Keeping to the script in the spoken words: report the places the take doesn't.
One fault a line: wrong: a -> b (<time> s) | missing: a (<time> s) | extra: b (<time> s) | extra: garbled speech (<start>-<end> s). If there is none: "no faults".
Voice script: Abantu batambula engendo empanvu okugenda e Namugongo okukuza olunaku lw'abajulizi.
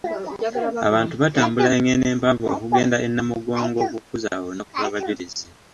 no faults